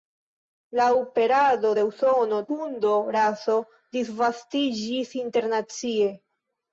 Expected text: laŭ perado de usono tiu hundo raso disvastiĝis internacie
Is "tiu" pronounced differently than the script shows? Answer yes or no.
yes